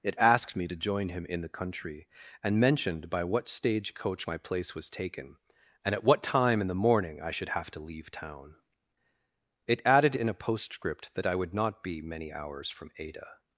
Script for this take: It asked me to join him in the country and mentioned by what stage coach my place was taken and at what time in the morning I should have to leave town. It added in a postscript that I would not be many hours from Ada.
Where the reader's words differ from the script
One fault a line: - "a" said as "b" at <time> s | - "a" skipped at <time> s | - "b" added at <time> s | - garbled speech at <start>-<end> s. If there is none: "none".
none